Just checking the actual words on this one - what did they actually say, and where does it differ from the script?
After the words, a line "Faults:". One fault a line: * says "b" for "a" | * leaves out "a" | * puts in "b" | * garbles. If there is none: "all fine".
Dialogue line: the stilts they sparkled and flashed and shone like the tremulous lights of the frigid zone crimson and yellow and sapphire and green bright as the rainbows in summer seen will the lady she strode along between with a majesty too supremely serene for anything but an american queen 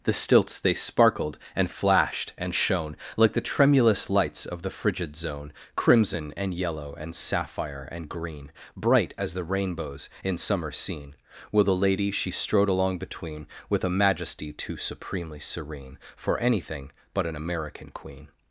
the stilts they sparkled and flashed and shone like the tremulous lights of the frigid zone crimson and yellow and sapphire and green bright as the rainbows in summer seen will the lady she strode along between with a majesty too supremely serene for anything but an american queen
Faults:
all fine